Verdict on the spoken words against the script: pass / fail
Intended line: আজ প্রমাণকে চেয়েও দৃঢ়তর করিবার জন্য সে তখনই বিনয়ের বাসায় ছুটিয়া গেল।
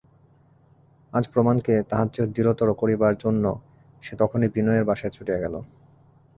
fail